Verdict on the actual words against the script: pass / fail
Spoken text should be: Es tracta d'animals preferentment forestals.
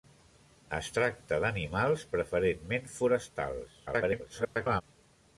fail